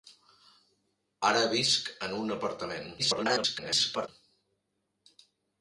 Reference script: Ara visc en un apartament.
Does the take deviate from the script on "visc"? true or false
false